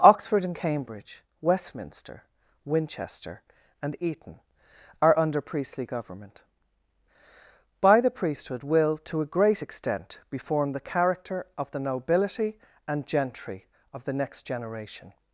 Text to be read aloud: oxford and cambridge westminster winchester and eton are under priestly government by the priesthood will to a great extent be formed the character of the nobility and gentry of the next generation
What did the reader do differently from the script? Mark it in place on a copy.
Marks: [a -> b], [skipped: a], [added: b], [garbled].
oxford and cambridge westminster winchester and eton are under priestly government by the priesthood will to a great extent be formed the character of the nobility and gentry of the next generation